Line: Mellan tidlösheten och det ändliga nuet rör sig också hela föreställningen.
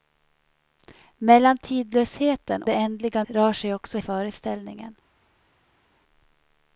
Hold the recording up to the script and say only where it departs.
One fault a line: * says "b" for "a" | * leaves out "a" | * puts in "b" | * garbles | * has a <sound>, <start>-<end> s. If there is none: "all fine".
* leaves out "och"
* leaves out "nuet"
* leaves out "hela"